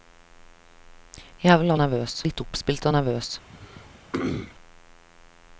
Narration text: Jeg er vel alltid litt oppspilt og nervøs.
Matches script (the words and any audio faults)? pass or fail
fail